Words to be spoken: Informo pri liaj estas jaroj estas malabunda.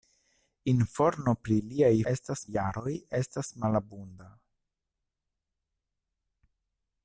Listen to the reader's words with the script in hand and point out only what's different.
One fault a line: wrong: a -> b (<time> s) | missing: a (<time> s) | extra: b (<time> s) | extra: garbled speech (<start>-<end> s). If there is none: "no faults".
no faults